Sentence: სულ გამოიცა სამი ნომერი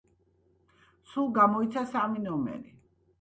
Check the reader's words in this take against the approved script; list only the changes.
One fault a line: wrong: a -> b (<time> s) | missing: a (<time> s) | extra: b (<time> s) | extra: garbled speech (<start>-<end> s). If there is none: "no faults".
no faults